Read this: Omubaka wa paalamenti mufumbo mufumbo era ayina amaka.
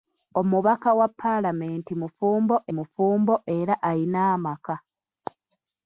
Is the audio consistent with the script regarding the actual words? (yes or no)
yes